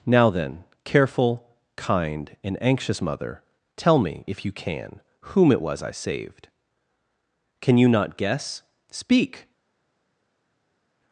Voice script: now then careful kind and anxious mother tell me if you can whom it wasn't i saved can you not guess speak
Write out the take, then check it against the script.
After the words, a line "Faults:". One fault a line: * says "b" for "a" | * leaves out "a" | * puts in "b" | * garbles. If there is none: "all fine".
now then careful kind and anxious mother tell me if you can whom it was i saved can you not guess speak
Faults:
* says "was" for "wasn't"